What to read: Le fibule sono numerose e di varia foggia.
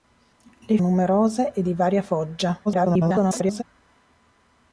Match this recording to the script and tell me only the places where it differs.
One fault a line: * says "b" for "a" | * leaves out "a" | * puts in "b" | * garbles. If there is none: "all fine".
* leaves out "fibule sono"
* garbles